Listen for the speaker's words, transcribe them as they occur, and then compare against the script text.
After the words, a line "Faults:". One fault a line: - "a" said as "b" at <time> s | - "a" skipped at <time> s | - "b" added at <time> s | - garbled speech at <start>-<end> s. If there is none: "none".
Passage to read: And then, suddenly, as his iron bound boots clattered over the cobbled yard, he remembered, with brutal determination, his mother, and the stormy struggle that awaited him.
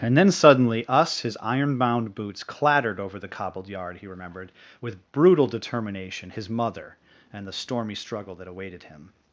And then, suddenly, us his iron bound boots clattered over the cobbled yard, he remembered, with brutal determination, his mother, and the stormy struggle that awaited him.
Faults:
- "as" said as "us" at 0.9 s